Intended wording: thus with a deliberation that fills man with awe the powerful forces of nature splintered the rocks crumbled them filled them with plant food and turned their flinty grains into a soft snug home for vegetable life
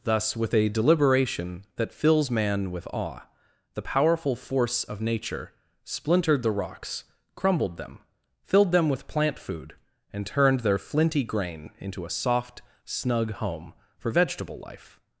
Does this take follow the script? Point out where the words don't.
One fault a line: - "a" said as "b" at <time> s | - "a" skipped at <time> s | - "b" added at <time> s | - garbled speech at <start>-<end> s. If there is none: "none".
- "forces" said as "force" at 4.3 s
- "grains" said as "grain" at 11.2 s